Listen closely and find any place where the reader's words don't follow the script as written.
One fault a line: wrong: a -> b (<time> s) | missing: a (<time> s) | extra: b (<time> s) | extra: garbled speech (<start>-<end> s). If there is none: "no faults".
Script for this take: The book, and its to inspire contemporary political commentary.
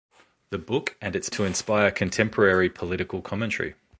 no faults